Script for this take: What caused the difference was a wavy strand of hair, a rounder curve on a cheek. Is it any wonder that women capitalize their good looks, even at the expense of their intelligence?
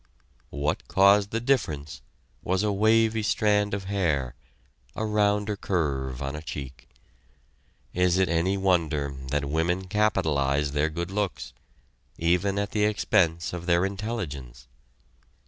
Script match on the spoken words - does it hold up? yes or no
yes